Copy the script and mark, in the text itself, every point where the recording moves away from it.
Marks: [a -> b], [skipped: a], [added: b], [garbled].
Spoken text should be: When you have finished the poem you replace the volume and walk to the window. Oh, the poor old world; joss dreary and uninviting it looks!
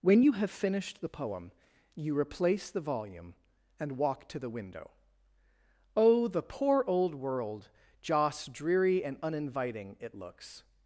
When you have finished the poem you replace the volume and walk to the window. Oh, the poor old world; joss dreary and uninviting it looks!